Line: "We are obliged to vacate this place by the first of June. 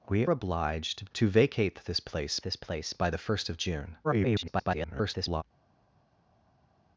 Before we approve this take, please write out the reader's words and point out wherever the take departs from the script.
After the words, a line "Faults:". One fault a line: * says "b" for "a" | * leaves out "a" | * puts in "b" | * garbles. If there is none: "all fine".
"We obliged to vacate this place this place by the first of June. [garbled]
Faults:
* leaves out "are"
* puts in "this place"
* garbles